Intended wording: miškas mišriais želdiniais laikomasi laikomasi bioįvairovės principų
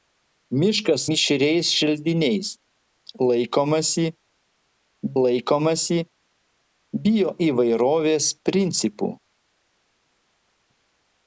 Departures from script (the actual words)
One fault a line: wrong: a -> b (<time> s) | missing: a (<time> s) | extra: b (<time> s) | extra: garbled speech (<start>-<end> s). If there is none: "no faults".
no faults